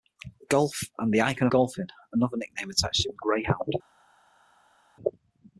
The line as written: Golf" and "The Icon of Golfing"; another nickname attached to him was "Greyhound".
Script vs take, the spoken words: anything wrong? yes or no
yes